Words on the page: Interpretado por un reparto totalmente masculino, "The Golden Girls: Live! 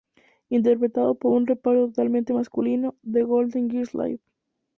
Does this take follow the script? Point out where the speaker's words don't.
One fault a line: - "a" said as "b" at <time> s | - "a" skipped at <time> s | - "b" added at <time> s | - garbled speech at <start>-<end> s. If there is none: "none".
none